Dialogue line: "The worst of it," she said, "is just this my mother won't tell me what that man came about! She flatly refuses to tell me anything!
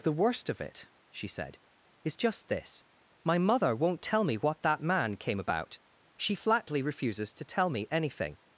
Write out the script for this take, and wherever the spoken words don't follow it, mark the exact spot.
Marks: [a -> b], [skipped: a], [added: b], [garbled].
"The worst of it," she said, "is just this my mother won't tell me what that man came about! She flatly refuses to tell me anything!